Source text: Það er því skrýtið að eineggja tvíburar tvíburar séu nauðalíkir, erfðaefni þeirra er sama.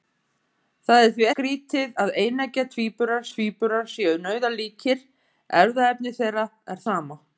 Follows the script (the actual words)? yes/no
yes